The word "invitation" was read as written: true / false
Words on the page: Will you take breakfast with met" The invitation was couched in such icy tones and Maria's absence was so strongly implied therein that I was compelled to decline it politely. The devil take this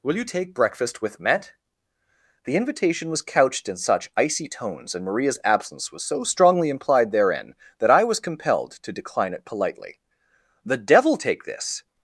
true